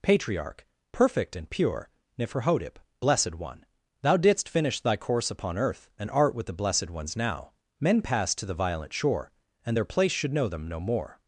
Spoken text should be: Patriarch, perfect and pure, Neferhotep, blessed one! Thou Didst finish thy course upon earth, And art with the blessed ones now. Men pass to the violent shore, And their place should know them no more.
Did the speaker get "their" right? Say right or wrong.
right